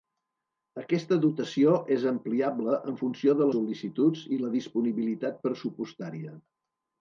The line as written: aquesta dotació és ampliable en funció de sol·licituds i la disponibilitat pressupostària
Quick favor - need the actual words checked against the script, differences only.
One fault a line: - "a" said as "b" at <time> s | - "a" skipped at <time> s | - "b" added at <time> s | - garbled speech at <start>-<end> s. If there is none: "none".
none